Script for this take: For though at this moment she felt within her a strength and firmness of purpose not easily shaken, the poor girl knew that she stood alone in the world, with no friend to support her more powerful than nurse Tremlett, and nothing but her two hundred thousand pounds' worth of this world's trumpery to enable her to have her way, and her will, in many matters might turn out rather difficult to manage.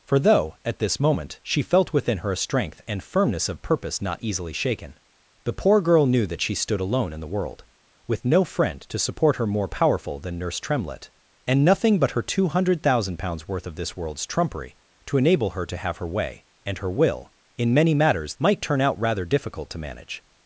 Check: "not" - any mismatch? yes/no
no